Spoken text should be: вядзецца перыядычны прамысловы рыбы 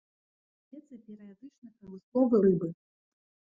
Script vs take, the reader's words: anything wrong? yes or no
no